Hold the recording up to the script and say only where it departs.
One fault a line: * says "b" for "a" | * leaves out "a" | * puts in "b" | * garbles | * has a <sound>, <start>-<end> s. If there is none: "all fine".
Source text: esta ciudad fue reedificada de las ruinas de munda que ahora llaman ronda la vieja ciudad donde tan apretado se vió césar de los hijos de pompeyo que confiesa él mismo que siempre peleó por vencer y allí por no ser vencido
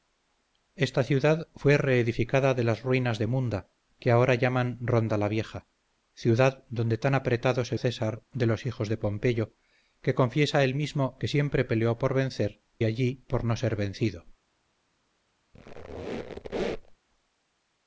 * leaves out "vió"
* leaves out "y"
* has a squeak, 15.5-17.0 s